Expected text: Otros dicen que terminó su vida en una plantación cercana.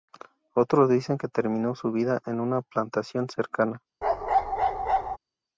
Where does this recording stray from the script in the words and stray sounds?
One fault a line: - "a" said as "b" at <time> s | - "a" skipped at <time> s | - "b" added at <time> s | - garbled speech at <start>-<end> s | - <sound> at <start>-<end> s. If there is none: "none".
- bark at 4.0-5.2 s